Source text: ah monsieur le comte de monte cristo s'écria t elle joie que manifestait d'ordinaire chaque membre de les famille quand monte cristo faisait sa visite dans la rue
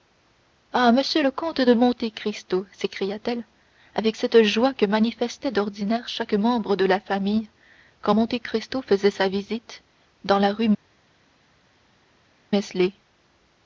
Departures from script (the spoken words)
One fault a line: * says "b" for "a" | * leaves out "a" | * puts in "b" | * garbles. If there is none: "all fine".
* puts in "avec cette"
* says "la" for "les"